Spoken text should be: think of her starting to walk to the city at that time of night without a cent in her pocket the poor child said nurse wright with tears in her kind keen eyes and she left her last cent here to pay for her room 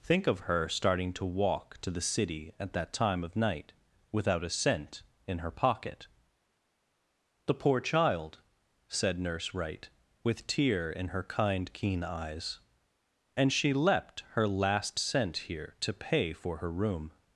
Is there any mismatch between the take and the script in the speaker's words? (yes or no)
yes